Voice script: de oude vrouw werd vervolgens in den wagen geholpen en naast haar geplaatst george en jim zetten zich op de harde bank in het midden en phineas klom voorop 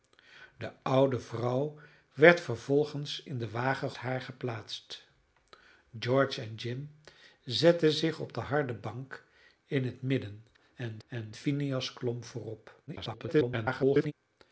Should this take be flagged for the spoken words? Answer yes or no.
yes